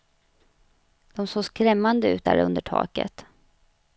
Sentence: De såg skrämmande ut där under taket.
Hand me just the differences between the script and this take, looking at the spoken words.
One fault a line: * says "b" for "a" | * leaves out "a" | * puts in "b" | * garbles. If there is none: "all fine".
all fine